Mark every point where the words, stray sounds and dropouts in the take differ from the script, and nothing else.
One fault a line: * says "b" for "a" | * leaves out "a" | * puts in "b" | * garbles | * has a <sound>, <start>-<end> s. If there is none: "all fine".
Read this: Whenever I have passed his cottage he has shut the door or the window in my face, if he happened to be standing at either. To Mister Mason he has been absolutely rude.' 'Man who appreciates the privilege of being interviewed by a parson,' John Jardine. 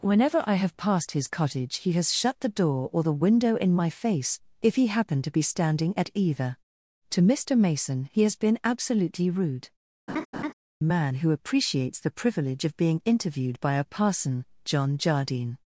* has a laugh, 10.1-10.5 s